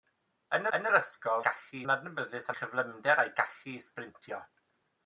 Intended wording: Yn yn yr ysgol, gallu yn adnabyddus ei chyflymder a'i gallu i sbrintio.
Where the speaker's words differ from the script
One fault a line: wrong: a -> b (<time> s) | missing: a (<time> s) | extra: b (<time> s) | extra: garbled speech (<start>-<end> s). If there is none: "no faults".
no faults